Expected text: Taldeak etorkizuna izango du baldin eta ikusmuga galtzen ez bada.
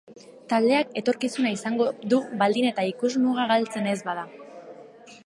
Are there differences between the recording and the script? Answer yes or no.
no